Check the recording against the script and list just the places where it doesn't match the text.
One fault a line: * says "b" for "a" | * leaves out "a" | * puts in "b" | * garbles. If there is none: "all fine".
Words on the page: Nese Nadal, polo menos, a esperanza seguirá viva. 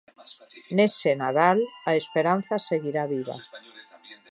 * leaves out "polo menos"